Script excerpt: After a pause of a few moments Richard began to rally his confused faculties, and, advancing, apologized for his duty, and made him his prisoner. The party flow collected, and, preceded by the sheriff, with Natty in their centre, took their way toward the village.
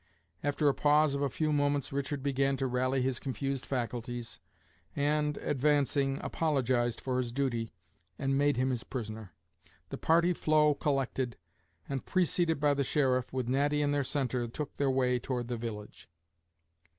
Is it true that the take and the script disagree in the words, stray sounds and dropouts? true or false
false